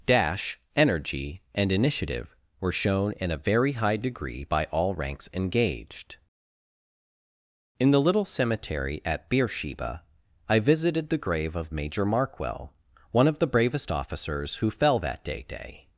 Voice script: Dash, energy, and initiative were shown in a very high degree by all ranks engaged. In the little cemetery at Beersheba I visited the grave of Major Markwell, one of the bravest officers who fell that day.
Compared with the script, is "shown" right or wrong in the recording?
right